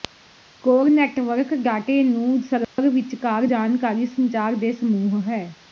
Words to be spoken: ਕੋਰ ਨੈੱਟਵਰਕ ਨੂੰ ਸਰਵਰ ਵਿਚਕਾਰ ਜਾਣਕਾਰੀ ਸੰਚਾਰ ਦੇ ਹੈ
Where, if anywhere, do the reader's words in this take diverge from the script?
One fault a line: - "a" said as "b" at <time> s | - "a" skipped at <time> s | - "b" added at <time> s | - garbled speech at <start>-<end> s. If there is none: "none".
- "ਡਾਟੇ" added at 1.6 s
- "ਸਮੂਹ" added at 4.7 s